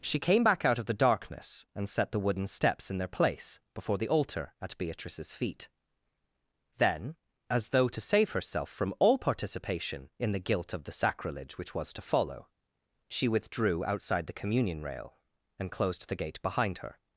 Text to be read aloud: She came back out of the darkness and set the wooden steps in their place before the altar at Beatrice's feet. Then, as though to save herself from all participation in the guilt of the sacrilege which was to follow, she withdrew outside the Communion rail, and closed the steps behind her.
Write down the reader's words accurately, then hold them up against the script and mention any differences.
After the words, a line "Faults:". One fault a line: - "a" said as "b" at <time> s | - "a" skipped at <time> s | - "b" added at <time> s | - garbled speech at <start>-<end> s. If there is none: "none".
She came back out of the darkness and set the wooden steps in their place before the altar at Beatrice's feet. Then, as though to save herself from all participation in the guilt of the sacrilege which was to follow, she withdrew outside the Communion rail, and closed the gate behind her.
Faults:
- "steps" said as "gate" at 16.2 s